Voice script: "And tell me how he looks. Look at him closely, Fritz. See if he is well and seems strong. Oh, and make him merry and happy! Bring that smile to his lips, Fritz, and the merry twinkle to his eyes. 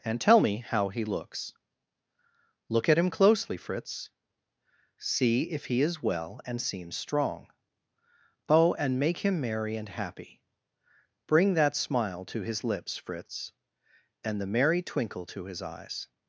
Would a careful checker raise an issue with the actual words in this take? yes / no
no